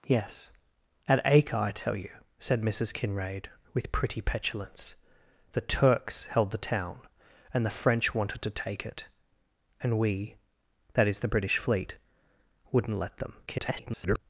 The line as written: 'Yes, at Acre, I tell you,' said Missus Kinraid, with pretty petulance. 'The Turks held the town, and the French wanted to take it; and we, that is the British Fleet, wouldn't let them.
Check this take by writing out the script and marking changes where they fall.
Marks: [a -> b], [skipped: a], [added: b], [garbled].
'Yes, at Acre, I tell you,' said Missus Kinraid, with pretty petulance. 'The Turks held the town, and the French wanted to take it; and we, that is the British Fleet, wouldn't let them. [garbled]